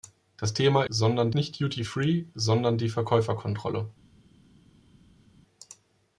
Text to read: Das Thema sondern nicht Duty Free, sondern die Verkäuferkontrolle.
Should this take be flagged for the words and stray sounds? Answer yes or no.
no